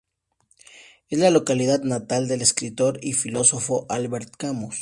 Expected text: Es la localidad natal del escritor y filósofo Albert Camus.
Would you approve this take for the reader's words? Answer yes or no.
yes